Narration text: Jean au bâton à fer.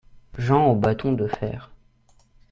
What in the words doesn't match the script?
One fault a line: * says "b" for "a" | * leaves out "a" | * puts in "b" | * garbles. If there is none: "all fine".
* says "de" for "à"